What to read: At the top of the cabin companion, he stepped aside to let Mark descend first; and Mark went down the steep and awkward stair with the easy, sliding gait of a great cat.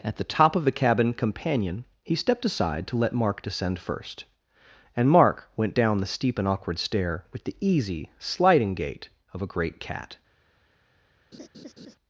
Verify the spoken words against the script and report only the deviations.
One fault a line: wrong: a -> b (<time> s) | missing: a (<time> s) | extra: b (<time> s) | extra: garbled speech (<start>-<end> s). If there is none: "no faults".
no faults